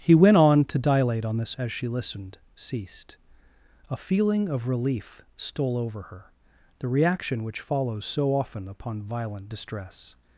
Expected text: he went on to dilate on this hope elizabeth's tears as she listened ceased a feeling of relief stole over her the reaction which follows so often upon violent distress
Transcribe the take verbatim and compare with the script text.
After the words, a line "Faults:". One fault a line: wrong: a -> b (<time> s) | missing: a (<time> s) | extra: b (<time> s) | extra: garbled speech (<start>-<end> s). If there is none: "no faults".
he went on to dilate on this as she listened ceased a feeling of relief stole over her the reaction which follows so often upon violent distress
Faults:
missing: hope elizabeth's tears (1.5 s)